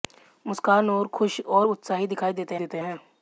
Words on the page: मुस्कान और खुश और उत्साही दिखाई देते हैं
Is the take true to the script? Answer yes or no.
no